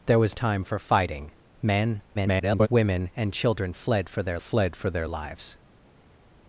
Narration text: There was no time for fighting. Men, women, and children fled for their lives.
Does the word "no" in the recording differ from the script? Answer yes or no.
yes